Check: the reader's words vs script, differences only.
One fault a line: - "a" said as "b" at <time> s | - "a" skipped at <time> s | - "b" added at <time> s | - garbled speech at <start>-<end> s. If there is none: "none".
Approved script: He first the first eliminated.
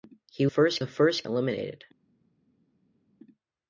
none